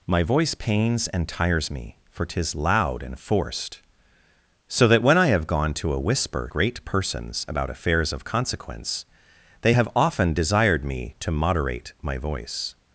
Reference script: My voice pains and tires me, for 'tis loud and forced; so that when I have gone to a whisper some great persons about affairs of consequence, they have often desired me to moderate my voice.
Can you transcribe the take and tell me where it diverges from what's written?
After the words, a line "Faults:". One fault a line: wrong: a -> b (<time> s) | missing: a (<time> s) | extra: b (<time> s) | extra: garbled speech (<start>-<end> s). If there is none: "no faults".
My voice pains and tires me, for 'tis loud and forced; so that when I have gone to a whisper great persons about affairs of consequence, they have often desired me to moderate my voice.
Faults:
missing: some (6.5 s)